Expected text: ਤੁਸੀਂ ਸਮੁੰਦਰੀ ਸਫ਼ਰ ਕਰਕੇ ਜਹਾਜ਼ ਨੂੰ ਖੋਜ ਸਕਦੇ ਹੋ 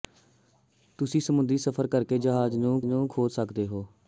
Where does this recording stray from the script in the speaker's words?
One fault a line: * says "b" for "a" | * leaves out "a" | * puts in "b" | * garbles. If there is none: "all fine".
* puts in "ਨੂੰ"